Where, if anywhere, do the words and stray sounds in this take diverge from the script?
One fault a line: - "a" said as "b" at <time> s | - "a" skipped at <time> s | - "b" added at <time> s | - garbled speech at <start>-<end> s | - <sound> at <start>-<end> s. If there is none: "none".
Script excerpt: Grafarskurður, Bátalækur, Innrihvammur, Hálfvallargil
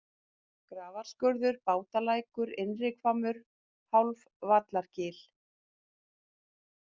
none